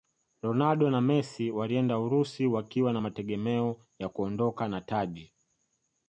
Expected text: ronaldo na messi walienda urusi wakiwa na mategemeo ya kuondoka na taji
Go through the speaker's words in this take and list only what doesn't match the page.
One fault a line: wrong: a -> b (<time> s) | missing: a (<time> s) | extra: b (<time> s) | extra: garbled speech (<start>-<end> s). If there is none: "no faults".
no faults